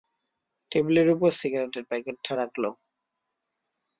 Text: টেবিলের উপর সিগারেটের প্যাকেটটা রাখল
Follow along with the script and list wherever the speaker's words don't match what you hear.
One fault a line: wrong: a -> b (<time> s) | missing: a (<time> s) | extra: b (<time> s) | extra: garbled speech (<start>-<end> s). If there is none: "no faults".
no faults